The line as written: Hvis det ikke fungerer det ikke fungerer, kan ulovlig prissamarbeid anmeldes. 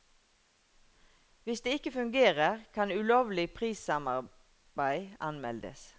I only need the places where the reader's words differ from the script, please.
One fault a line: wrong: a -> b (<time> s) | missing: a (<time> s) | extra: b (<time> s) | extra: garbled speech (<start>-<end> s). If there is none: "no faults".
missing: det ikke fungerer (2.6 s)